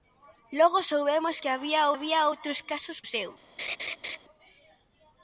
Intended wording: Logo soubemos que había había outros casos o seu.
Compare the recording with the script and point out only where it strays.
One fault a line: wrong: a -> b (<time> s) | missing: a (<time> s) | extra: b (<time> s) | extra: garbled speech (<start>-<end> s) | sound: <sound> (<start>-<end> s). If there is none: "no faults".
sound: laugh (3.6-4.2 s)